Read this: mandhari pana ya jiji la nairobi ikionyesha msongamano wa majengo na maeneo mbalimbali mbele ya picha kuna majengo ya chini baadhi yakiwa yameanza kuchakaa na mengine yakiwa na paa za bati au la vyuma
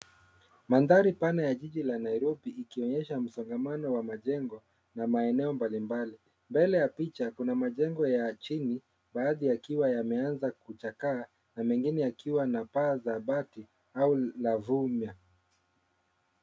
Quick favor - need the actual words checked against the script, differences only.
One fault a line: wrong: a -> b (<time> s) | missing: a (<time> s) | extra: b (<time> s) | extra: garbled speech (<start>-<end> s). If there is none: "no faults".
no faults